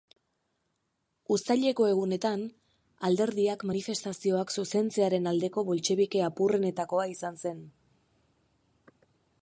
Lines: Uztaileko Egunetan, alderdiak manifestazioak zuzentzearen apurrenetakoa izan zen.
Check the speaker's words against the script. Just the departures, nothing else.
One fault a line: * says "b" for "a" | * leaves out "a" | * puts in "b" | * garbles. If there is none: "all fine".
* puts in "aldeko boltxebike"